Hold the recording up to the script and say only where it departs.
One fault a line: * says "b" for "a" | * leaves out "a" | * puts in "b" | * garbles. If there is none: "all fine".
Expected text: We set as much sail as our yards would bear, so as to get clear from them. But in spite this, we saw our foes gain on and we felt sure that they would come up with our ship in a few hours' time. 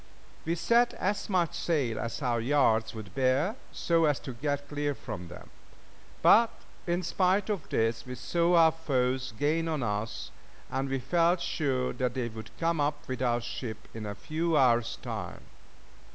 * puts in "of"
* puts in "us"